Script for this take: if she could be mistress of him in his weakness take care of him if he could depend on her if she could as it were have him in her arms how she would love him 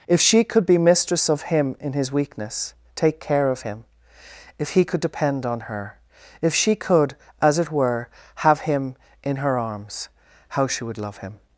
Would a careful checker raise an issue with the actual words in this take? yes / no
no